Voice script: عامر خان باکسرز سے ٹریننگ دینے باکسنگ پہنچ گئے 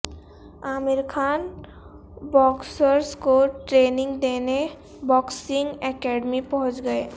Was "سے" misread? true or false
true